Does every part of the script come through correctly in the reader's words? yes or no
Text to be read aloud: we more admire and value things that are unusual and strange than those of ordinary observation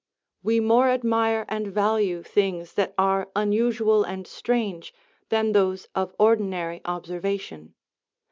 yes